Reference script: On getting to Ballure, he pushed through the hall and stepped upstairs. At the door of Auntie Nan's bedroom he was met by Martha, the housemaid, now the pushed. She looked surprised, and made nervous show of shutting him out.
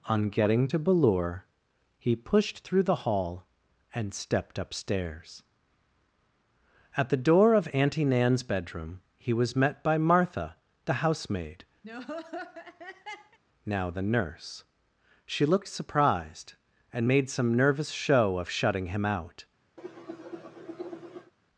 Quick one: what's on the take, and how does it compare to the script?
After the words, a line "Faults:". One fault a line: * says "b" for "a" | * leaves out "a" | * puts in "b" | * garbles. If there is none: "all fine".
On getting to Ballure, he pushed through the hall and stepped upstairs. At the door of Auntie Nan's bedroom he was met by Martha, the housemaid, now the nurse. She looked surprised, and made some nervous show of shutting him out.
Faults:
* says "nurse" for "pushed"
* puts in "some"